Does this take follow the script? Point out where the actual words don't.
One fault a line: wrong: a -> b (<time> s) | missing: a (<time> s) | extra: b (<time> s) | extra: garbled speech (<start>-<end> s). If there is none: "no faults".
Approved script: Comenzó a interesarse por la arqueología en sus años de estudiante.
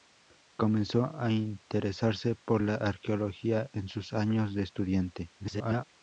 extra: garbled speech (5.4-5.8 s)